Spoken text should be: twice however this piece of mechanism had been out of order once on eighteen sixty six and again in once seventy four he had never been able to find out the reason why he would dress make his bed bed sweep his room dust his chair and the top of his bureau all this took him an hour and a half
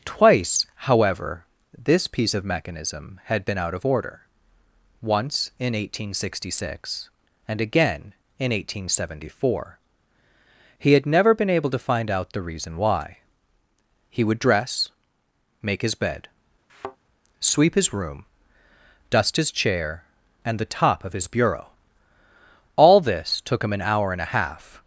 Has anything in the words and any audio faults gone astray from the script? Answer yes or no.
yes